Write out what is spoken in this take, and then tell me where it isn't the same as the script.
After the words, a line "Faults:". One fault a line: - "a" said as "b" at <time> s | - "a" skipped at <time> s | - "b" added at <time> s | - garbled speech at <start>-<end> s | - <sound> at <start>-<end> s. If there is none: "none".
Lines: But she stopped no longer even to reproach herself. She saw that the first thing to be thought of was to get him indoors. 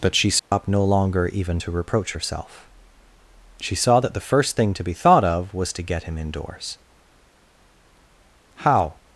But she stopped no longer even to reproach herself. She saw that the first thing to be thought of was to get him indoors. How
Faults:
- dropout at 0.4-0.5 s
- "How" added at 8.6 s